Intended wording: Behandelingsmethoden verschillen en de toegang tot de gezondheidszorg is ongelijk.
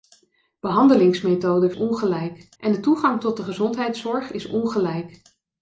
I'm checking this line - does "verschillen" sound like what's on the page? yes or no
no